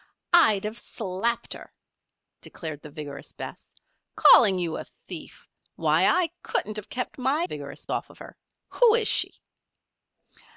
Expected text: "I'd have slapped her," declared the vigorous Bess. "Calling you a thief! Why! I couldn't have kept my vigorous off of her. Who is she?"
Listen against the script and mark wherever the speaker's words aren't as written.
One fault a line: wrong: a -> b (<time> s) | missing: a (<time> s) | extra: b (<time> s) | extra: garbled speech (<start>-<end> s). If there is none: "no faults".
no faults